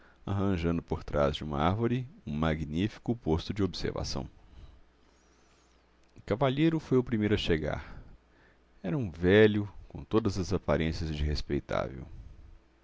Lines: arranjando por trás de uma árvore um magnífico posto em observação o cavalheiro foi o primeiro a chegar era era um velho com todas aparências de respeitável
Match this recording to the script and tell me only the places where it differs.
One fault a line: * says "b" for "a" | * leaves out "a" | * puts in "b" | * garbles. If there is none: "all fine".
* says "de" for "em"
* leaves out "era"
* puts in "as"